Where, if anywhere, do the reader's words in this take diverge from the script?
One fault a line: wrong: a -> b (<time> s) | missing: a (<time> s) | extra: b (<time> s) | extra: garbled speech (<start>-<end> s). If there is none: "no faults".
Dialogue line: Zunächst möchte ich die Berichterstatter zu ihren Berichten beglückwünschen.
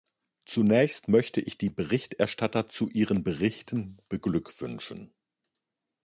no faults